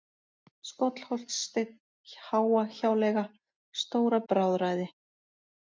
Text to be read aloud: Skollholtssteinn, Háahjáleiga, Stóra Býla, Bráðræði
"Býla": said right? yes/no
no